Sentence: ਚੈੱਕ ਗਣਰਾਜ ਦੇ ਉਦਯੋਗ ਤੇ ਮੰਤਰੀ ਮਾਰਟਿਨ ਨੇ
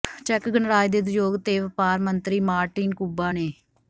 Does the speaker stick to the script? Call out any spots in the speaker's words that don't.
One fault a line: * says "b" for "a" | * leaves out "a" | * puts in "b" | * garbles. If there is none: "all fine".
* puts in "ਵਪਾਰ"
* puts in "ਕੁਬਾ"